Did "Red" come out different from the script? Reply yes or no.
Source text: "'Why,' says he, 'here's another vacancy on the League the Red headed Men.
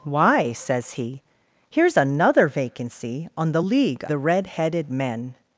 no